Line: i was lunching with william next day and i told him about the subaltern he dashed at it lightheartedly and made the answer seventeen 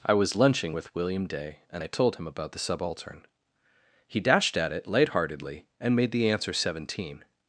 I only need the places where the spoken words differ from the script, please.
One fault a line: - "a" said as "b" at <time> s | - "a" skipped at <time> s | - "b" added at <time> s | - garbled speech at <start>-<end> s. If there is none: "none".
- "next" skipped at 1.2 s